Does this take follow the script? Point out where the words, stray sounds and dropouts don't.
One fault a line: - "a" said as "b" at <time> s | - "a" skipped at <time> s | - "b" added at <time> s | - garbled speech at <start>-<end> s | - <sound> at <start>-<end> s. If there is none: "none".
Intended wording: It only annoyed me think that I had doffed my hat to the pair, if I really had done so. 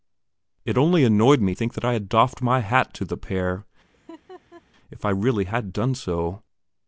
- laugh at 3.9-4.6 s